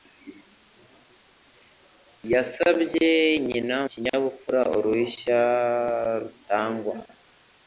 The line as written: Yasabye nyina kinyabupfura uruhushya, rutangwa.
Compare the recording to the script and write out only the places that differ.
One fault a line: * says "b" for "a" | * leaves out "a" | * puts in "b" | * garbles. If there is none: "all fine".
all fine